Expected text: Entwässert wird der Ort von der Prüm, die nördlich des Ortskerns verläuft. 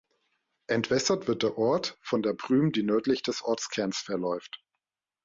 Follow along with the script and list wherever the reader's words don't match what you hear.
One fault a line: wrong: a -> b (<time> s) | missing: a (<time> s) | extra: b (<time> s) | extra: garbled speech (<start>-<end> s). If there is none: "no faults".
no faults